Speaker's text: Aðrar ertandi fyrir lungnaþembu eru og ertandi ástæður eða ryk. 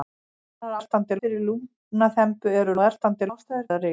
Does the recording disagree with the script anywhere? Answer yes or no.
no